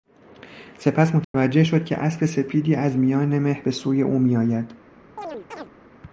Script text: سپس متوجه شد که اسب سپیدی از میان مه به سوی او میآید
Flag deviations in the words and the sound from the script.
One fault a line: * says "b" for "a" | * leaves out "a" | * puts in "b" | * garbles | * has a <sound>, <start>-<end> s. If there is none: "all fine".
* has a dropout, 1.2-1.3 s
* has a chirp, 5.2-5.7 s